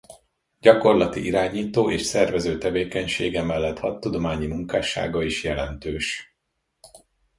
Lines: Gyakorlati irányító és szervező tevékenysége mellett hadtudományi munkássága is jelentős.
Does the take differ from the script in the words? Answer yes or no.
no